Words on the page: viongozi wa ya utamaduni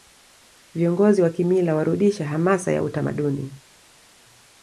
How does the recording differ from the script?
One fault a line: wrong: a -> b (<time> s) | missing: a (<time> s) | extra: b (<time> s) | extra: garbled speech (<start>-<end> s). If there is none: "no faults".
extra: kimila warudisha hamasa (1.3 s)